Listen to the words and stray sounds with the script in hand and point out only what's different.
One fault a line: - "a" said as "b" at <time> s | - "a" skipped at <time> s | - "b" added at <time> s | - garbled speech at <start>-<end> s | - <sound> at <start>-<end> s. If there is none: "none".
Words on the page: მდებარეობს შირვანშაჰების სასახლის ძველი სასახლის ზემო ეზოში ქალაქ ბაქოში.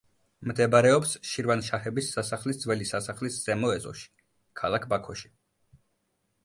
none